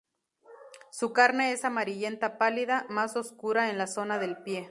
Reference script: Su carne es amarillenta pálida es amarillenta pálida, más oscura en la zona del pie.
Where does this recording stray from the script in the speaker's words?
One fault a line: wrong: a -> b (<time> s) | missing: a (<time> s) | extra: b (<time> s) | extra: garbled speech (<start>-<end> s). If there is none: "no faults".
missing: es amarillenta pálida (2.9 s)